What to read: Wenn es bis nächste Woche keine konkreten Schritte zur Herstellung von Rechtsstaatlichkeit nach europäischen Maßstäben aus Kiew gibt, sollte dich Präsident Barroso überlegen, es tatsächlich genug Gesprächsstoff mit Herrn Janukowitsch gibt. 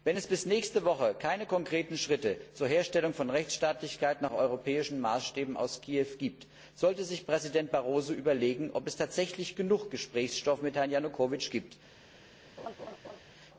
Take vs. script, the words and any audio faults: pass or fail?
fail